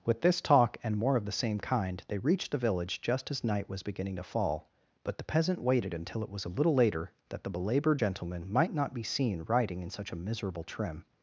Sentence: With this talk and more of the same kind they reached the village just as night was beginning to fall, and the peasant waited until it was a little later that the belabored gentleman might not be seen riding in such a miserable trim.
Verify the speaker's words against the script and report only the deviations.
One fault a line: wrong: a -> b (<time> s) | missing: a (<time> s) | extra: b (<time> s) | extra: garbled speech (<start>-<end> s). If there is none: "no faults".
wrong: and -> but (5.0 s)